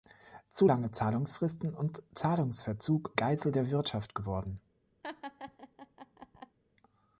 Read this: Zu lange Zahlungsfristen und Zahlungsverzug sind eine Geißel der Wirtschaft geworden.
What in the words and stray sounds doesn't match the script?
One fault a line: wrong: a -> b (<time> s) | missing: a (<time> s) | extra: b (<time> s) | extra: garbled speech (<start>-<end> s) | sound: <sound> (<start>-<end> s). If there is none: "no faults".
missing: sind eine (3.2 s)
sound: laugh (5.0-6.6 s)